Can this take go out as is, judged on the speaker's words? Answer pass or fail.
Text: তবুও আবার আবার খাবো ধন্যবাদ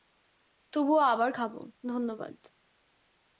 fail